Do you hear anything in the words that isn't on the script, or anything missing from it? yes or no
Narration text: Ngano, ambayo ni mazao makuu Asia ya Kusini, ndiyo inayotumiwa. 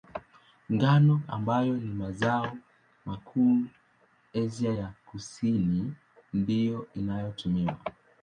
no